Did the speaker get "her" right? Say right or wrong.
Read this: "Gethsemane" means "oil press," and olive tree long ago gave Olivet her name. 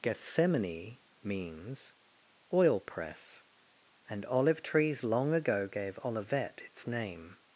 wrong